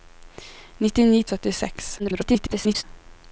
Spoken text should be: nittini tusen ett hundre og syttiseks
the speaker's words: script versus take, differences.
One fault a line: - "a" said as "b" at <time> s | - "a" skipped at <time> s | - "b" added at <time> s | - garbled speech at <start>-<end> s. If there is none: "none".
- "tusen ett hundre" skipped at 1.2 s
- garbled speech at 2.0-2.8 s